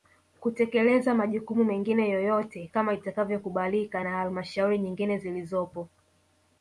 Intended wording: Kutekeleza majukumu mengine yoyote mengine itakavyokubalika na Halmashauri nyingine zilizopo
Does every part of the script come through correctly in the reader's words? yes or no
no